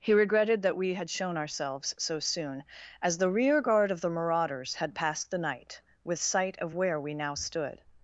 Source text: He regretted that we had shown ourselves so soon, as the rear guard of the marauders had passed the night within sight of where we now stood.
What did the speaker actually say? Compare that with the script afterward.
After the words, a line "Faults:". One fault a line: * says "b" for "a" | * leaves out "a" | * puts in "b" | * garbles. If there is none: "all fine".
He regretted that we had shown ourselves so soon, as the rear guard of the marauders had passed the night with sight of where we now stood.
Faults:
* says "with" for "within"